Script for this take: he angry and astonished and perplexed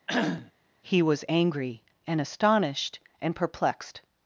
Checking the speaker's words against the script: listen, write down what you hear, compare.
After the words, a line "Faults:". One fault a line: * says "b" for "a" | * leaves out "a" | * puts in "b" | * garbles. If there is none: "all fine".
he was angry and astonished and perplexed
Faults:
* puts in "was"